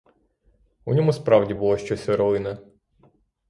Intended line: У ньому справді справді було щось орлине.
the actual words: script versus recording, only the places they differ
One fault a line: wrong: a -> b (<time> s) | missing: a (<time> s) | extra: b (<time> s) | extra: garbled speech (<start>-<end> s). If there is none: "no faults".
missing: справді (1.5 s)